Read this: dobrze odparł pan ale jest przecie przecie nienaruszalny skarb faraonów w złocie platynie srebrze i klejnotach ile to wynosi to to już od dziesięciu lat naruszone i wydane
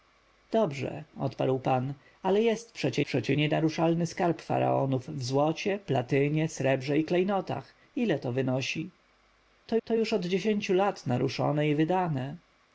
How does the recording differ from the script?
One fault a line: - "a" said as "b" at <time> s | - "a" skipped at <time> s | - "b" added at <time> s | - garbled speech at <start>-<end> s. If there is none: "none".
none